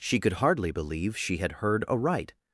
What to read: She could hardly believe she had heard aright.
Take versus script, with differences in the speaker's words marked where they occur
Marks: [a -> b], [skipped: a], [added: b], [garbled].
She could hardly believe she had heard aright.